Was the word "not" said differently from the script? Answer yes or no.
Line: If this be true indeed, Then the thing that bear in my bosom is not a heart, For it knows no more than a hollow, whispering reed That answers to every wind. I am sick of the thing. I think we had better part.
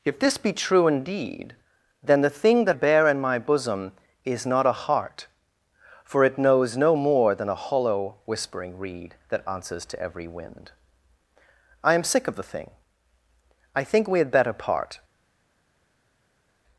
no